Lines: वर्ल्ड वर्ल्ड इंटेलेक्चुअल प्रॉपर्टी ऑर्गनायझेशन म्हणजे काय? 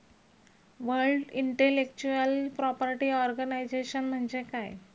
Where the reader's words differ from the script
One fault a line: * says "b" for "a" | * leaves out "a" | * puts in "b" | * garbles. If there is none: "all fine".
* leaves out "वर्ल्ड"